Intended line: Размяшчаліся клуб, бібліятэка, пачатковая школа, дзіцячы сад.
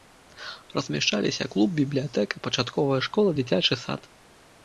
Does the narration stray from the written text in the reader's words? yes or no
no